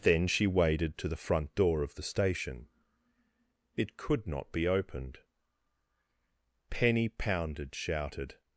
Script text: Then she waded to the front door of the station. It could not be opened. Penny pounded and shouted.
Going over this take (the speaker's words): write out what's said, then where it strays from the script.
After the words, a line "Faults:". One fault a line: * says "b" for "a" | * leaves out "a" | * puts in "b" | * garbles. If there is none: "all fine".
Then she waded to the front door of the station. It could not be opened. Penny pounded shouted.
Faults:
* leaves out "and"